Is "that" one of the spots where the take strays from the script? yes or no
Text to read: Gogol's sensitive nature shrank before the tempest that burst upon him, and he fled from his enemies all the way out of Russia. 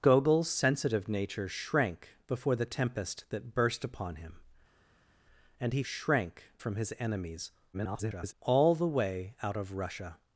no